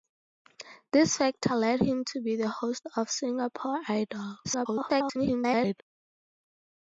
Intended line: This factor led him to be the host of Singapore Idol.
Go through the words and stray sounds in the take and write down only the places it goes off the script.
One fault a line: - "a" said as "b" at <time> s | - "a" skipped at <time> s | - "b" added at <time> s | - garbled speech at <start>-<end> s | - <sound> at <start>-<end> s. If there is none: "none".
- garbled speech at 4.4-5.8 s